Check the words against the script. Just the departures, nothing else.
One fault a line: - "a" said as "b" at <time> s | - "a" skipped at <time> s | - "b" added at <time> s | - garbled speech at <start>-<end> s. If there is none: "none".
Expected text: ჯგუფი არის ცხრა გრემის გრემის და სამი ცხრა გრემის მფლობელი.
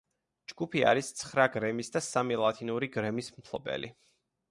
- "გრემის" skipped at 1.9 s
- "ცხრა" said as "ლათინური" at 2.4 s